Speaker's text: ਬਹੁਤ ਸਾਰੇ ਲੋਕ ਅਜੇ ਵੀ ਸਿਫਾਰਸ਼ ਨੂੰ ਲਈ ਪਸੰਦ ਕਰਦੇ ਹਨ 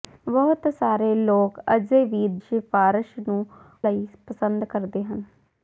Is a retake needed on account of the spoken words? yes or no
no